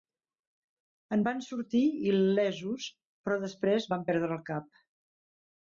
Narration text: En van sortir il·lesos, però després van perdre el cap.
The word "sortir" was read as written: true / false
true